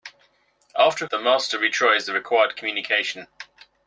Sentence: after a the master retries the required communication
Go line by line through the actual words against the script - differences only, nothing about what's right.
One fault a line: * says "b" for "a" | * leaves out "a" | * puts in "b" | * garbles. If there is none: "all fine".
all fine